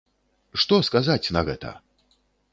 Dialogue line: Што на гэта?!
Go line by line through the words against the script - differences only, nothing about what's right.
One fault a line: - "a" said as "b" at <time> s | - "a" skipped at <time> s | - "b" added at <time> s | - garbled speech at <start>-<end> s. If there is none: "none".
- "сказаць" added at 0.9 s